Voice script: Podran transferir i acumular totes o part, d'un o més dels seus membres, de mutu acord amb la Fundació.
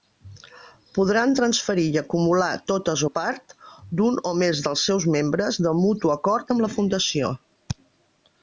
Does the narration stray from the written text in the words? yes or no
no